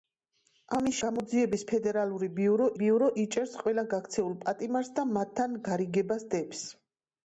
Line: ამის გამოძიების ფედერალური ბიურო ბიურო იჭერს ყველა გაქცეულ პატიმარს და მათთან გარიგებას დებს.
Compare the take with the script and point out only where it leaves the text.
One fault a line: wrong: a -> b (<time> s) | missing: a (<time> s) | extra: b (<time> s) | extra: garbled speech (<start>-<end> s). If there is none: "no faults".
no faults